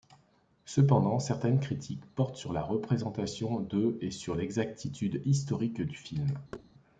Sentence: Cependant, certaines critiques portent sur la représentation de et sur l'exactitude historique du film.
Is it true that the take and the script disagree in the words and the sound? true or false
true